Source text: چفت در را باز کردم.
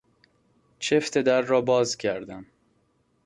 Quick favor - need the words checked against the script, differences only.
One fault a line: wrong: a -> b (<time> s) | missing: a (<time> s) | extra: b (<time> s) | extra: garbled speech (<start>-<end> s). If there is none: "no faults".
no faults